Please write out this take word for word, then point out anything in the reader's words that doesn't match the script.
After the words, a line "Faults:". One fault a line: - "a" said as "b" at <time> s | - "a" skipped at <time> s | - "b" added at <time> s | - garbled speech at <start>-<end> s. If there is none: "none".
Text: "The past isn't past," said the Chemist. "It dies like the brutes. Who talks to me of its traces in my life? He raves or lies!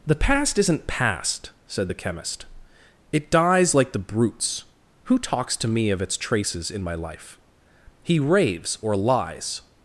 "The past isn't past," said the Chemist. "It dies like the brutes. Who talks to me of its traces in my life? He raves or lies!
Faults:
none